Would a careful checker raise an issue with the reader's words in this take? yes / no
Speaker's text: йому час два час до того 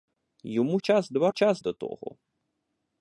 no